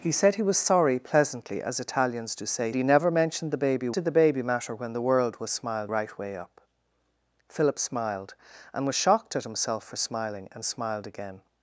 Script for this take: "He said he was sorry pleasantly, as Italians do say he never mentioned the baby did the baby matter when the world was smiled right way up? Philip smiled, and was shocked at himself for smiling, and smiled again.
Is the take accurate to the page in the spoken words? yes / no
yes